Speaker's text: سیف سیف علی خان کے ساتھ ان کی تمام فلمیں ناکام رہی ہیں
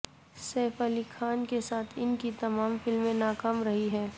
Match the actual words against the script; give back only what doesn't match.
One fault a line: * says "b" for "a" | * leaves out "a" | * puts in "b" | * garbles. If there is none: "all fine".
* leaves out "سیف"